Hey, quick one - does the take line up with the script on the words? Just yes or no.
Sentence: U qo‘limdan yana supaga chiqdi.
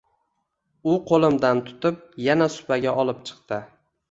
no